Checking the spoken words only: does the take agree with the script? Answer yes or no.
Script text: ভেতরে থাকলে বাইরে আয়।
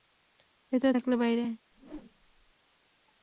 yes